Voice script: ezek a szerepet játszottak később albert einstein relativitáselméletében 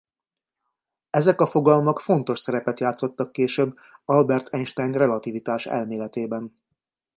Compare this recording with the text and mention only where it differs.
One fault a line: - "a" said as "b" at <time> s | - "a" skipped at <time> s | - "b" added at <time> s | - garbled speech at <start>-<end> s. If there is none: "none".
- "fogalmak fontos" added at 1.5 s